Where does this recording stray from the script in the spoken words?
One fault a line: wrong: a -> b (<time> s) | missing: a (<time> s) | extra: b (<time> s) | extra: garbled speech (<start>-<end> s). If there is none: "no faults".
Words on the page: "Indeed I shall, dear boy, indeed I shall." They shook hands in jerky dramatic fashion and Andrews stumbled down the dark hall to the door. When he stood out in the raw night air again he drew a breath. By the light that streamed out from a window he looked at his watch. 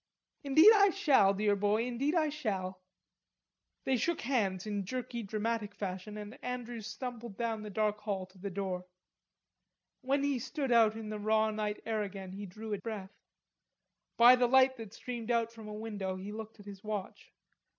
no faults